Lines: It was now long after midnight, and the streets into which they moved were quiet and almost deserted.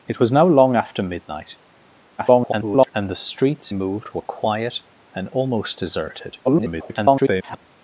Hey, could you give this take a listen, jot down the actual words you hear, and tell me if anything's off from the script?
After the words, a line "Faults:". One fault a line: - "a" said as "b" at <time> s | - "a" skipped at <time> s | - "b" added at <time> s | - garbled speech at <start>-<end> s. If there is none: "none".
It was now long after midnight, [garbled] and the streets moved were quiet and almost deserted. [garbled]
Faults:
- garbled speech at 2.2-2.9 s
- "into which they" skipped at 3.7 s
- garbled speech at 6.4-7.7 s